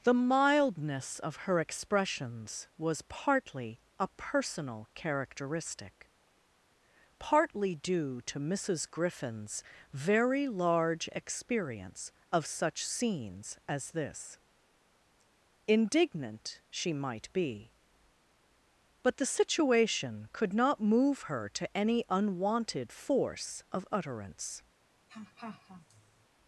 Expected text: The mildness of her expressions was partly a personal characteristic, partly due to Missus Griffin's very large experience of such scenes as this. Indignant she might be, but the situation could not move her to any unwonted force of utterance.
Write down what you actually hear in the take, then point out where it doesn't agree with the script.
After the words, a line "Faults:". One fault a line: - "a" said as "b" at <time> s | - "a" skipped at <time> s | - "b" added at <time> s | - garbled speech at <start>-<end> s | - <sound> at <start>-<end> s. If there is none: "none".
The mildness of her expressions was partly a personal characteristic, partly due to Missus Griffin's very large experience of such scenes as this. Indignant she might be, but the situation could not move her to any unwonted force of utterance.
Faults:
- laugh at 25.1-26.3 s